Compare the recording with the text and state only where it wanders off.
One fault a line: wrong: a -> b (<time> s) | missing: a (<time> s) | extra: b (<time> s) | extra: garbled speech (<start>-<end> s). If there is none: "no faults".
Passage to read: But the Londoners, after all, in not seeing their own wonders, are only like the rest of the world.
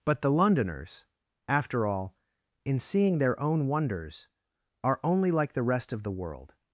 missing: not (2.8 s)